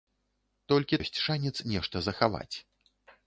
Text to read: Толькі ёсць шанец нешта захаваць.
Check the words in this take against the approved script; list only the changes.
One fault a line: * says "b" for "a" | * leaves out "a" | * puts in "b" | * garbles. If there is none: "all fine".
all fine